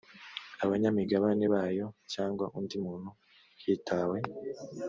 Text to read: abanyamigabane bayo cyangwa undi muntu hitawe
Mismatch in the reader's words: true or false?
false